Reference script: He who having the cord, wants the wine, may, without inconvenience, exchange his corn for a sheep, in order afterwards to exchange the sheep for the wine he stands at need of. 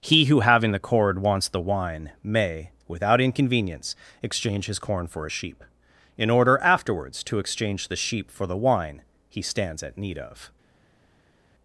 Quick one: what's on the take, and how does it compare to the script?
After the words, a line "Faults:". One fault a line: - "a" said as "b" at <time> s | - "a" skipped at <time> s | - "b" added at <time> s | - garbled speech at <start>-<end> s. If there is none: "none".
He who having the cord, wants the wine, may, without inconvenience, exchange his corn for a sheep, in order afterwards to exchange the sheep for the wine he stands at need of.
Faults:
none